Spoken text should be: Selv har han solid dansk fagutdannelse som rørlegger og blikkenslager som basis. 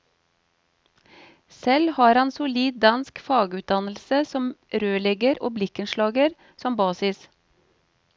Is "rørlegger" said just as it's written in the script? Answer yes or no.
yes